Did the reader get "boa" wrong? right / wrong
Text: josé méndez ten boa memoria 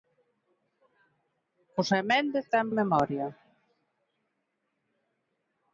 wrong